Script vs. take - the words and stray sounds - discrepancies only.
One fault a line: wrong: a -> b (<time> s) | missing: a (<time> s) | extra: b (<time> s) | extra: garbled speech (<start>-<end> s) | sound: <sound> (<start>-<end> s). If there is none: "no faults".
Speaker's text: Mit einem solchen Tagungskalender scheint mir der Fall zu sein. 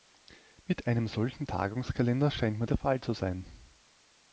no faults